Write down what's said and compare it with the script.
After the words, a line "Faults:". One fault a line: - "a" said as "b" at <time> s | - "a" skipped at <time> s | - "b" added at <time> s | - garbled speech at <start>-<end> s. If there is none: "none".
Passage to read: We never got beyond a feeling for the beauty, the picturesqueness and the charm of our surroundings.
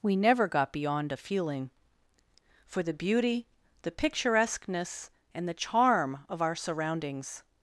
We never got beyond a feeling for the beauty, the picturesqueness and the charm of our surroundings.
Faults:
none